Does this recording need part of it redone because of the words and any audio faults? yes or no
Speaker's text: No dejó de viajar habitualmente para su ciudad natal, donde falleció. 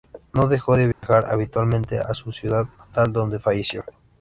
yes